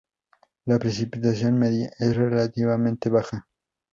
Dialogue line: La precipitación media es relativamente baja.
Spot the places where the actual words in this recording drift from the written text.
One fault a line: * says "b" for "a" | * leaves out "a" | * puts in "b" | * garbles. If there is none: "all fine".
all fine